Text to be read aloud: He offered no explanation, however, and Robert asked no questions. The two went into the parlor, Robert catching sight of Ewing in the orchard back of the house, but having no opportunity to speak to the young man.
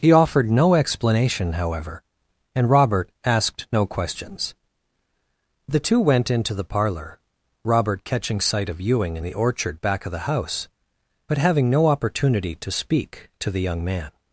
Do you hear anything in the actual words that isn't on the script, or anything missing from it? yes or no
no